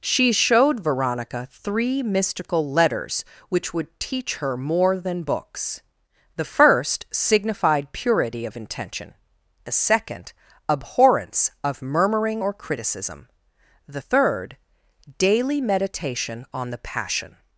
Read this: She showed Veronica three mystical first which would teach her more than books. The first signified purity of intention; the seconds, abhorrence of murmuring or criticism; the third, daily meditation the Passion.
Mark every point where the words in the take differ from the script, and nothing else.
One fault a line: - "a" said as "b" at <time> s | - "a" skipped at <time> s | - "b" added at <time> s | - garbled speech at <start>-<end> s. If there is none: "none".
- "first" said as "letters" at 2.7 s
- "seconds" said as "second" at 9.7 s
- "on" added at 16.5 s